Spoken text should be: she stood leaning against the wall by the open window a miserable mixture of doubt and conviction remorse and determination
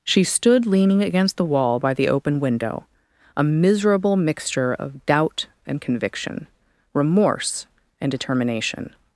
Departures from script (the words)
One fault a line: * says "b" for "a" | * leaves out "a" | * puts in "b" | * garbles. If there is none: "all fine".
all fine